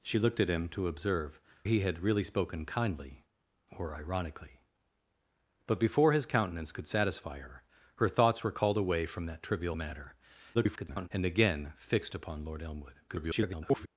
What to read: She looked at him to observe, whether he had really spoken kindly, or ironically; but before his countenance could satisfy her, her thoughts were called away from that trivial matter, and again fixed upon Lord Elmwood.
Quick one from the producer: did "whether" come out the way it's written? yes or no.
no